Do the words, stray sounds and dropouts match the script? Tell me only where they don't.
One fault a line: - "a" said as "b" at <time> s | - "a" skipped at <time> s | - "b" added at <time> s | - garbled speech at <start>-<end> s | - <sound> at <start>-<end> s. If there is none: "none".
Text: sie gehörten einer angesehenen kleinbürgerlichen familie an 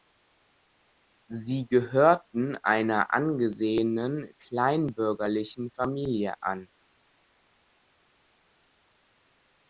none